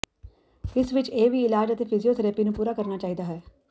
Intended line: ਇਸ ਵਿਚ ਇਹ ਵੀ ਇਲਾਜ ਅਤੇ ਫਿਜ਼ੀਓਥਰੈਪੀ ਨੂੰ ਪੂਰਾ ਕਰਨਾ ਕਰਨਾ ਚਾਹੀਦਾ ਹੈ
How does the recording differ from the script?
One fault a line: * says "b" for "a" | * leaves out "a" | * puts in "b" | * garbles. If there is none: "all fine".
* leaves out "ਕਰਨਾ"